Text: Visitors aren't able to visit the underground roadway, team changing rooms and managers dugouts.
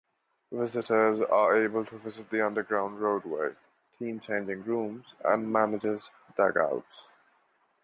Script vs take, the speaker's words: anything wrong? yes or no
yes